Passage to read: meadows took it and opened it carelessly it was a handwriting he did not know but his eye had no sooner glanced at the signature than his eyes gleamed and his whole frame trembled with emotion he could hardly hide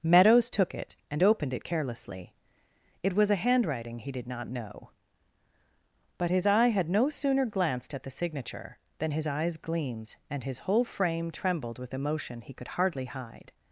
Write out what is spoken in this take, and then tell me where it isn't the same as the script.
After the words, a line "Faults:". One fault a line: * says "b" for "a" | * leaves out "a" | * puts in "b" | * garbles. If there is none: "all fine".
meadows took it and opened it carelessly it was a handwriting he did not know but his eye had no sooner glanced at the signature than his eyes gleamed and his whole frame trembled with emotion he could hardly hide
Faults:
all fine